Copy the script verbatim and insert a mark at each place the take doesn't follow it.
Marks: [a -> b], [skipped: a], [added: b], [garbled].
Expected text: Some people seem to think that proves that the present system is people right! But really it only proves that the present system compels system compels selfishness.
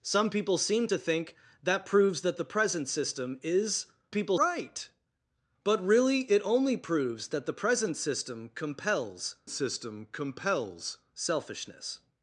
Some people seem to think that proves that the present system is people right! But really it only proves that the present system compels system compels selfishness.